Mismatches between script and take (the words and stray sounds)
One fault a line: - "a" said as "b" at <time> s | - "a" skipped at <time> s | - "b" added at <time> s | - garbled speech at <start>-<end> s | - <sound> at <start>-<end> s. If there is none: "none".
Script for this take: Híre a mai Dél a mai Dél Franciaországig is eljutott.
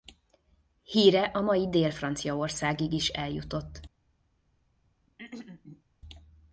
- "a mai Dél" skipped at 1.9 s
- throat clearing at 5.1-5.8 s